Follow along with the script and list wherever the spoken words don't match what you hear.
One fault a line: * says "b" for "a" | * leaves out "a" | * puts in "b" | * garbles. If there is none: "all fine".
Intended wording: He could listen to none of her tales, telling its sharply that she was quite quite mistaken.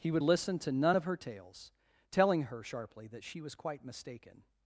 * says "would" for "could"
* says "her" for "its"
* leaves out "quite"